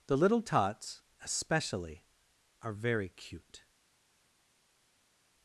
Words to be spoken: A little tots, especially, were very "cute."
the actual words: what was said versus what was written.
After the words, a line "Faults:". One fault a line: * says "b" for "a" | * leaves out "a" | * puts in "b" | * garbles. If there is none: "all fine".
The little tots, especially, are very "cute."
Faults:
* says "The" for "A"
* says "are" for "were"